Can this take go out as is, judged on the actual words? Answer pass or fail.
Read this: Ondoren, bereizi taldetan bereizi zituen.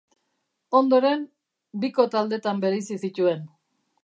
fail